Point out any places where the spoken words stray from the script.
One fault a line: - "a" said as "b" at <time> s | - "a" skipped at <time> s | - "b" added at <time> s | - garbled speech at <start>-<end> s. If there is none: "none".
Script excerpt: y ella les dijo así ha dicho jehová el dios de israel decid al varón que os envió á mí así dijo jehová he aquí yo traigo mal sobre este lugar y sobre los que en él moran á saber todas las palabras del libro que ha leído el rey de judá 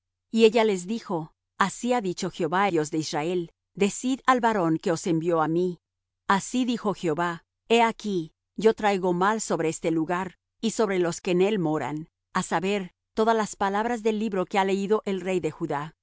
- "el" skipped at 2.7 s